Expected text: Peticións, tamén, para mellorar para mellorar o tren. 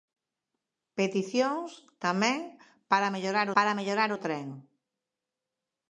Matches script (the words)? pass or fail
pass